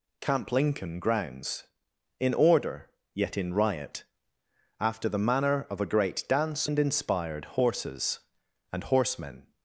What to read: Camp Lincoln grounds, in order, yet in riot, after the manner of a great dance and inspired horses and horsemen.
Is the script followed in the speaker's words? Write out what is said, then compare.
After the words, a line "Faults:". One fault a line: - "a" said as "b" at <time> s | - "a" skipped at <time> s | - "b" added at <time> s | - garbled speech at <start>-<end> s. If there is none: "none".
Camp Lincoln grounds, in order, yet in riot, after the manner of a great dance and inspired horses and horsemen.
Faults:
none